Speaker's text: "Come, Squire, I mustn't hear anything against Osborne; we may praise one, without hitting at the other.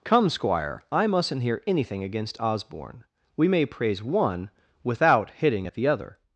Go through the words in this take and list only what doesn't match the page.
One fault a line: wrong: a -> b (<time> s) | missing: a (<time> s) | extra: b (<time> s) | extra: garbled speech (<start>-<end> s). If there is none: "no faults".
no faults